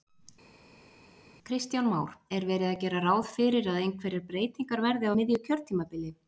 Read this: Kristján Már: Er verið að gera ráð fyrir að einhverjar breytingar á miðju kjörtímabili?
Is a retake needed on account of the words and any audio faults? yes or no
yes